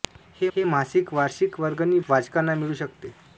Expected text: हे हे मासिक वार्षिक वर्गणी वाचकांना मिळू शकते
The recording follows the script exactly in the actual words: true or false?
true